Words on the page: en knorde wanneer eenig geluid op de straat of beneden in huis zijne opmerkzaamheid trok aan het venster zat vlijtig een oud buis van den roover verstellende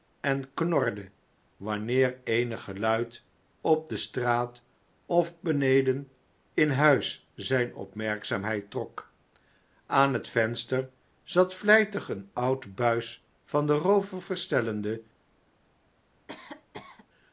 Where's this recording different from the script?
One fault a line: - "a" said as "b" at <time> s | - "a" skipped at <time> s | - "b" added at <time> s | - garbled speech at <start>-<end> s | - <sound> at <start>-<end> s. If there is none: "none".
- cough at 16.3-17.1 s